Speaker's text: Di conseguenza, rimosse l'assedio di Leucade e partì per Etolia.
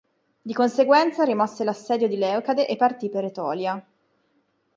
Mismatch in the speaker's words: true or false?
false